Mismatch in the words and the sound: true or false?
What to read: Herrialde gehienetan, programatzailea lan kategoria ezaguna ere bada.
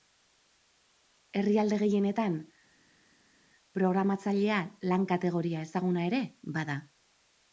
false